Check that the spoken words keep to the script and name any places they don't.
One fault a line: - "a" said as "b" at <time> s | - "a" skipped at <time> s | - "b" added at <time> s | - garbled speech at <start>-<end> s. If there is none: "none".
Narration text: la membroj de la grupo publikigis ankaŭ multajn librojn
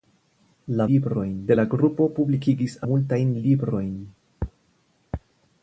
- "membroj" said as "librojn" at 0.9 s
- "ankaŭ" skipped at 2.8 s